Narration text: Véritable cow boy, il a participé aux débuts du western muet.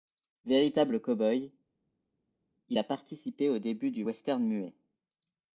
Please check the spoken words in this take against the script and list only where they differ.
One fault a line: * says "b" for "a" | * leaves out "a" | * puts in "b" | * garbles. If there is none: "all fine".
all fine